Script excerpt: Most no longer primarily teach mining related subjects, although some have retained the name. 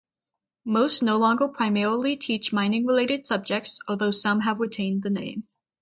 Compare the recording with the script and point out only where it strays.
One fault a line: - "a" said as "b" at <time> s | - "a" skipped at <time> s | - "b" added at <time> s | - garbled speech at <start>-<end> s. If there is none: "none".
none